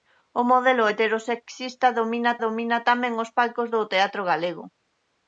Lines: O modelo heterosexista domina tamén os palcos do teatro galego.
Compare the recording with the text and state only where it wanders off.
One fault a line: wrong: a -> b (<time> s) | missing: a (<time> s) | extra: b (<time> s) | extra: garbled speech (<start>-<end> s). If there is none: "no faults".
extra: domina (2.4 s)